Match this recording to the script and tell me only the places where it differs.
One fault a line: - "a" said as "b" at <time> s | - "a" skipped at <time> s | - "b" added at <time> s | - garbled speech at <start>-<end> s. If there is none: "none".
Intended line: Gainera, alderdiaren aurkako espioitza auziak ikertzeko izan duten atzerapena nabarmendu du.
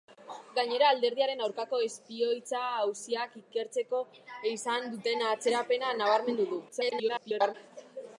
- garbled speech at 6.7-7.5 s